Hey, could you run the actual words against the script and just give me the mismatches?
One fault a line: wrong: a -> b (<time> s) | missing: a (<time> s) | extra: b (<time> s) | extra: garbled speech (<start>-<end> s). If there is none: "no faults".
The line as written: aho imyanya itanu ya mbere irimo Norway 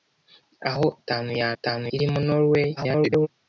missing: imyanya (0.8 s)
wrong: mbere -> itanu (1.5 s)
extra: garbled speech (2.8-3.3 s)